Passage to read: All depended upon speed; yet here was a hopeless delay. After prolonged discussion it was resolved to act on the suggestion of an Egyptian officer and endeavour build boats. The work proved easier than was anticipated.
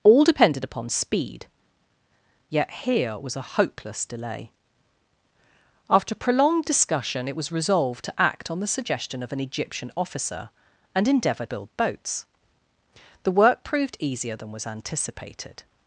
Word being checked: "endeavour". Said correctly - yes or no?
yes